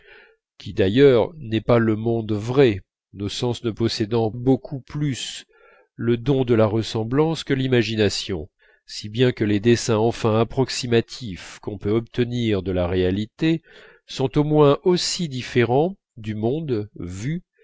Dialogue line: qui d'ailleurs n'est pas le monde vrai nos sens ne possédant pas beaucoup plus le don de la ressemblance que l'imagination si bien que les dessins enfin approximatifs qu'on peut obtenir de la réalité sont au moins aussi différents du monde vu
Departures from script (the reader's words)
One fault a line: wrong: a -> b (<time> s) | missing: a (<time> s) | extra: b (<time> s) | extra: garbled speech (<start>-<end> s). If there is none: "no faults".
missing: pas (4.3 s)